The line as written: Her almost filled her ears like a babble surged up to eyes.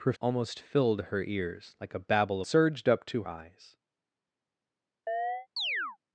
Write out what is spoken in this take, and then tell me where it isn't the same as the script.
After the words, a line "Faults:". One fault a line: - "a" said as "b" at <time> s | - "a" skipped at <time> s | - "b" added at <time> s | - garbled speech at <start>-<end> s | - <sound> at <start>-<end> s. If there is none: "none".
Her almost filled her ears like a babble surged up to eyes.
Faults:
- chirp at 5.1-6.0 s